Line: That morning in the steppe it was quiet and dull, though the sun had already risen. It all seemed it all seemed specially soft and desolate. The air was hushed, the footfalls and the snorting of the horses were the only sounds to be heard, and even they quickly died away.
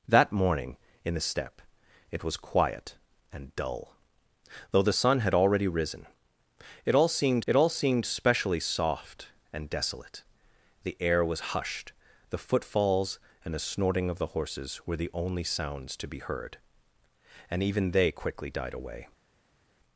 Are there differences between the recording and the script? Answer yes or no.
no